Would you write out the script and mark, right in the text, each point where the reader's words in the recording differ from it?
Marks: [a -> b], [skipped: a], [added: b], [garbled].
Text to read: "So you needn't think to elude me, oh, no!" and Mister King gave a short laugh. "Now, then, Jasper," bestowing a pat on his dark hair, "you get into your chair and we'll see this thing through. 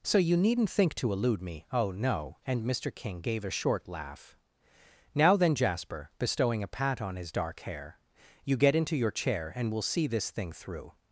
"So you needn't think to elude me, oh, no!" and Mister King gave a short laugh. "Now, then, Jasper," bestowing a pat on his dark hair, "you get into your chair and we'll see this thing through.